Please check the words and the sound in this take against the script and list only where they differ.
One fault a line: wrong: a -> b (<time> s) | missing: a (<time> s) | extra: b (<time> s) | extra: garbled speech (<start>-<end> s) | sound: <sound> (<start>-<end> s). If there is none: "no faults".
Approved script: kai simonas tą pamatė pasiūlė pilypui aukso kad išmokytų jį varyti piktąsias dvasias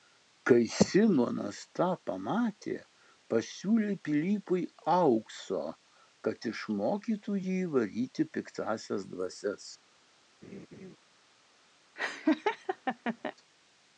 sound: laugh (10.4-11.0 s)
sound: laugh (12.0-13.3 s)